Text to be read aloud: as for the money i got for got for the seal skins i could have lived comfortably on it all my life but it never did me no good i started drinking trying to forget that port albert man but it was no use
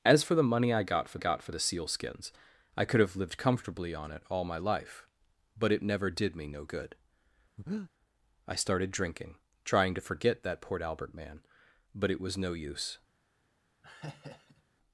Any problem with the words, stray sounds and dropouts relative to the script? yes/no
yes